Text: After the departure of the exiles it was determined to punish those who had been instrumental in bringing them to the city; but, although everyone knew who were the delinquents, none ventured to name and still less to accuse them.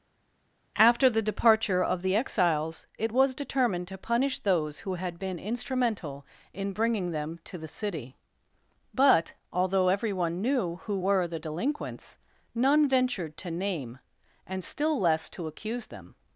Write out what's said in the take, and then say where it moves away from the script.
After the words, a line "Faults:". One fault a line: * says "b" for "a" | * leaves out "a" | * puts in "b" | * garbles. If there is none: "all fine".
After the departure of the exiles it was determined to punish those who had been instrumental in bringing them to the city; but, although everyone knew who were the delinquents, none ventured to name and still less to accuse them.
Faults:
all fine